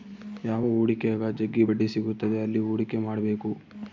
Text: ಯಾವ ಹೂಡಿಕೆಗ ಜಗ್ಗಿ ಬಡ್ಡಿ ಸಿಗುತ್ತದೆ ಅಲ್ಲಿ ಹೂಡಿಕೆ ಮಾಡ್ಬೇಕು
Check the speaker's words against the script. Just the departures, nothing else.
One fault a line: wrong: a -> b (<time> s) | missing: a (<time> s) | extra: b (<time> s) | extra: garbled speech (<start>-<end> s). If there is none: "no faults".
no faults